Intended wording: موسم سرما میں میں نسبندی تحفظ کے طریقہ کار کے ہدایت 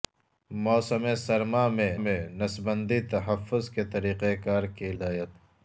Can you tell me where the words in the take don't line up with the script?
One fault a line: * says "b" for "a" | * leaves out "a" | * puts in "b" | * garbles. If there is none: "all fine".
all fine